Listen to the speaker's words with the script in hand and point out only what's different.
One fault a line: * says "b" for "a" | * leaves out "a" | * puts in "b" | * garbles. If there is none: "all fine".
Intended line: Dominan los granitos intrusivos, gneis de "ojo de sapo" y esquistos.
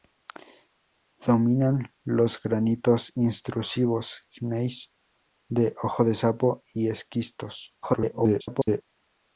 * garbles